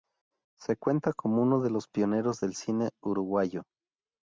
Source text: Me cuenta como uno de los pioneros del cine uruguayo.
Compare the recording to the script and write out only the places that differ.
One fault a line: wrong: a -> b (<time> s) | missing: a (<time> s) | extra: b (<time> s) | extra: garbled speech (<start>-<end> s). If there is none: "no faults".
wrong: Me -> Se (0.6 s)